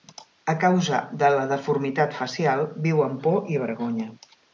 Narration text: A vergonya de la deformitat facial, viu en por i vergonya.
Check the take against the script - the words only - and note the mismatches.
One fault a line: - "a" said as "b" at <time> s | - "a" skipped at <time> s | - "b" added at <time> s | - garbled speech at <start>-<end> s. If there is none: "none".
- "vergonya" said as "causa" at 0.6 s
- "en" said as "amb" at 3.1 s